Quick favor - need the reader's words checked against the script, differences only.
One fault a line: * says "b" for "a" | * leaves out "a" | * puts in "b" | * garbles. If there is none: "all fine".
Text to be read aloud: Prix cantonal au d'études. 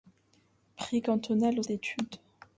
all fine